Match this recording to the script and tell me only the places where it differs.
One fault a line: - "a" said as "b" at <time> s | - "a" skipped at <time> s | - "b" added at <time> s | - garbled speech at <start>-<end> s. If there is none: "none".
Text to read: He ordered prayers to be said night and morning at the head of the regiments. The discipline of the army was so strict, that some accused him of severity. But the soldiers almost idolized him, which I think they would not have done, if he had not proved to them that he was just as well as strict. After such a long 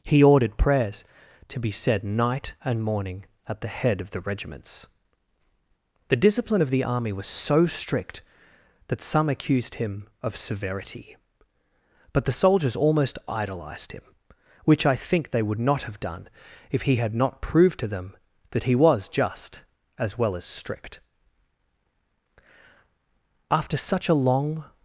none